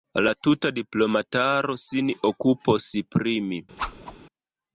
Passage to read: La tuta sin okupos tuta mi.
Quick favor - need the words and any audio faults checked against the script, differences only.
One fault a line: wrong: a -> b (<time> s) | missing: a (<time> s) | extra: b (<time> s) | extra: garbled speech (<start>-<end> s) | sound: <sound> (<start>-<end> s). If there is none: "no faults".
extra: diplomataro (0.8 s)
wrong: tuta -> pri (3.2 s)
sound: whoosh (3.8-4.2 s)